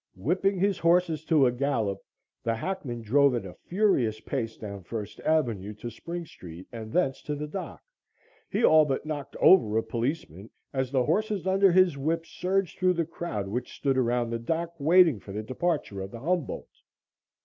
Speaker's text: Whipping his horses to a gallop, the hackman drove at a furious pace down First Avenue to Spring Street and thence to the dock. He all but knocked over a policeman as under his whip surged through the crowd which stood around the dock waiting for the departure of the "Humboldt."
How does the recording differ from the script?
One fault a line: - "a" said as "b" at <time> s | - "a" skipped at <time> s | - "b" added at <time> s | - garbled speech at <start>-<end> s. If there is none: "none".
- "the horses" added at 10.9 s